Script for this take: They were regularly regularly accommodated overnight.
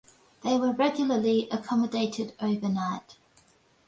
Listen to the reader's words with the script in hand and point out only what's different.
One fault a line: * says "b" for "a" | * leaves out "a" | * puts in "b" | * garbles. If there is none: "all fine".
* leaves out "regularly"